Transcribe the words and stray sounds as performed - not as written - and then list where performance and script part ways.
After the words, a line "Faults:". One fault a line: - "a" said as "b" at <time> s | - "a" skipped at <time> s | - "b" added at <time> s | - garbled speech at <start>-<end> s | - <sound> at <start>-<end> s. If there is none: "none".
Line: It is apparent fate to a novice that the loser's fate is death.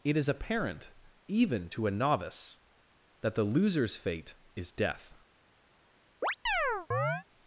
It is apparent even to a novice that the loser's fate is death.
Faults:
- "fate" said as "even" at 1.3 s
- chirp at 6.2-7.2 s